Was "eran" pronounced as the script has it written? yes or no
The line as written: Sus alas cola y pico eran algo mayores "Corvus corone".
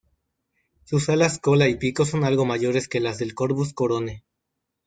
no